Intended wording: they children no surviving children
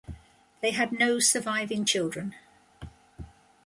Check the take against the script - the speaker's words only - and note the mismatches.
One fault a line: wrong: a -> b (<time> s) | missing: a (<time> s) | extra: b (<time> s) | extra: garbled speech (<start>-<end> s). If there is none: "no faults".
wrong: children -> had (0.7 s)